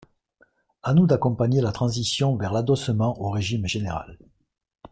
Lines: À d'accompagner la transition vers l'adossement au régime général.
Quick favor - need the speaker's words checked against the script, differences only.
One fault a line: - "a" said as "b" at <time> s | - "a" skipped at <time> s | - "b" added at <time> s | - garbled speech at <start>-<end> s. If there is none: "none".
- "nous" added at 0.9 s